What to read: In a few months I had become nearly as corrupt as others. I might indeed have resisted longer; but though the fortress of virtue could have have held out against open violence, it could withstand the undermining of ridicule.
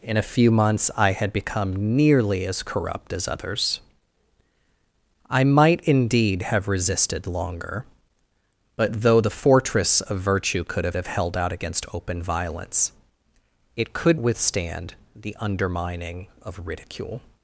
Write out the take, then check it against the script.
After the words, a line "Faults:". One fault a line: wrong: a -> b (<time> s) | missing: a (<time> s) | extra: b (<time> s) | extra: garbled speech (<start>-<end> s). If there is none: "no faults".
In a few months I had become nearly as corrupt as others. I might indeed have resisted longer; but though the fortress of virtue could have have held out against open violence, it could withstand the undermining of ridicule.
Faults:
no faults